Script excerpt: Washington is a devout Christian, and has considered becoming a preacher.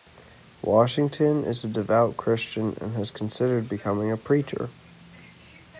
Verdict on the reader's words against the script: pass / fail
pass